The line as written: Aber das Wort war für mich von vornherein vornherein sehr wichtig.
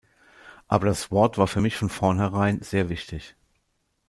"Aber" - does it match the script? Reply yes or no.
yes